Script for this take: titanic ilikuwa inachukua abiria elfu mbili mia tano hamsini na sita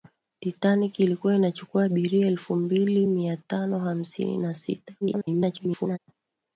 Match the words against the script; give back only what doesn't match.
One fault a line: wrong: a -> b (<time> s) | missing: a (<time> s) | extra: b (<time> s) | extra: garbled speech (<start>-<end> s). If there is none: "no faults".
extra: garbled speech (5.0-6.0 s)